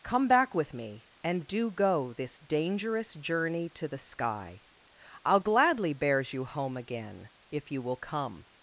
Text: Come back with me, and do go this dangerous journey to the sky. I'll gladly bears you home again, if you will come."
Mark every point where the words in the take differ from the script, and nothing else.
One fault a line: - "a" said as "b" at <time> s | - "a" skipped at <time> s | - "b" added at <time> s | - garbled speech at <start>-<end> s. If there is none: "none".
none